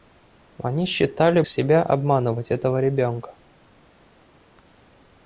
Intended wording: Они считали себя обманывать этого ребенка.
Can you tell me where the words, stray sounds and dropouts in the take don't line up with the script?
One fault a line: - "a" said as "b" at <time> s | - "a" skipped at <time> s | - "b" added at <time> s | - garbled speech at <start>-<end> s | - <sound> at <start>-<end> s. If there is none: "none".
none